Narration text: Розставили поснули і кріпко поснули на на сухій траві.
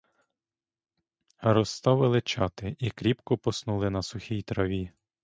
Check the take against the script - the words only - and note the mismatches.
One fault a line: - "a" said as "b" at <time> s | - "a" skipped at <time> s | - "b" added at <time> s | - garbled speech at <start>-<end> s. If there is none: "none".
- "поснули" said as "чати" at 2.2 s
- "на" skipped at 4.0 s